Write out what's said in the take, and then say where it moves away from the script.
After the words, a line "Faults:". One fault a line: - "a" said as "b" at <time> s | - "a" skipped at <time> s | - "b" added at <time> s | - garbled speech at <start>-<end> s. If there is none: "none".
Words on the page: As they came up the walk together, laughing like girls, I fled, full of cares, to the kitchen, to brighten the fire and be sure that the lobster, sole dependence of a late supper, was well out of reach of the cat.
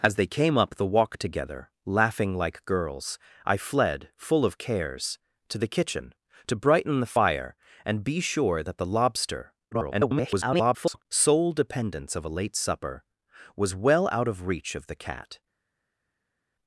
As they came up the walk together, laughing like girls, I fled, full of cares, to the kitchen, to brighten the fire and be sure that the lobster, [garbled] sole dependence of a late supper, was well out of reach of the cat.
Faults:
- garbled speech at 9.7-11.0 s